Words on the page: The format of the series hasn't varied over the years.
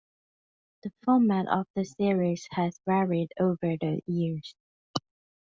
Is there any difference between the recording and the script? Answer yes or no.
yes